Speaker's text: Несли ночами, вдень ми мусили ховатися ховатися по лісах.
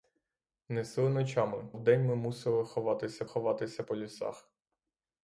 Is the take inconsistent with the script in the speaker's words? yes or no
no